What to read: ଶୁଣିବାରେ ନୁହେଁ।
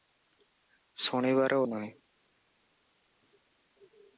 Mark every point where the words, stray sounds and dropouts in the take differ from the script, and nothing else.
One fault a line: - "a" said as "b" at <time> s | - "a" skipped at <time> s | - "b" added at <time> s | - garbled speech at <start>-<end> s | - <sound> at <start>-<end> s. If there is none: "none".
none